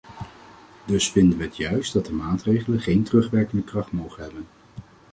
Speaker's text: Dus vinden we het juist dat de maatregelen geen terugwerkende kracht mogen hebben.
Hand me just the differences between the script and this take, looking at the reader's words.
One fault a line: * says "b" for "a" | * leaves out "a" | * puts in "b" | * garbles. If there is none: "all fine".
all fine